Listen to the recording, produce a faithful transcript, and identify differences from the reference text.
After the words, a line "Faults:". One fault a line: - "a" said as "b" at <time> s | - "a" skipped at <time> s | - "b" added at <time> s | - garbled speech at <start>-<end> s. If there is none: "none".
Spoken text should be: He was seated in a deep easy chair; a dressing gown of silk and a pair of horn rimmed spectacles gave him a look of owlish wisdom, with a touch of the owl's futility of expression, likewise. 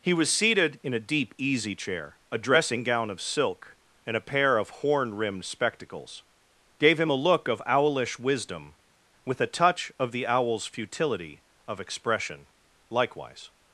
He was seated in a deep easy chair; a dressing gown of silk and a pair of horn rimmed spectacles gave him a look of owlish wisdom, with a touch of the owl's futility of expression, likewise.
Faults:
none